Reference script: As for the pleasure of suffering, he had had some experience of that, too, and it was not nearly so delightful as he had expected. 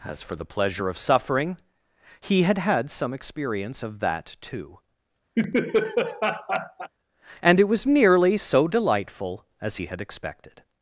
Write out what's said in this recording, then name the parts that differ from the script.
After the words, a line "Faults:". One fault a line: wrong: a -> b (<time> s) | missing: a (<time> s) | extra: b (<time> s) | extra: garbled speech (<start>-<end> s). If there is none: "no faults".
As for the pleasure of suffering, he had had some experience of that, too, and it was nearly so delightful as he had expected.
Faults:
missing: not (7.9 s)